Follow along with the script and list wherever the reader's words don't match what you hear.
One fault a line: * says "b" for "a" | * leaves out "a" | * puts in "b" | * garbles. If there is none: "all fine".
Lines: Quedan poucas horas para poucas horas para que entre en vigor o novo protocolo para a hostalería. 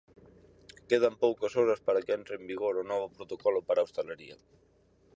* leaves out "poucas horas para"